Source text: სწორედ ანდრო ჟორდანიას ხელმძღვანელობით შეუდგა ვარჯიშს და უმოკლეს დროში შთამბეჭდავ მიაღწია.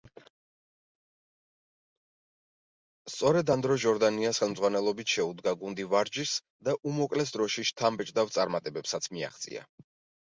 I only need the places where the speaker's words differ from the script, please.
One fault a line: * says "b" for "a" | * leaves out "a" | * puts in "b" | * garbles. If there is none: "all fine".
* puts in "გუნდი"
* puts in "წარმატებებსაც"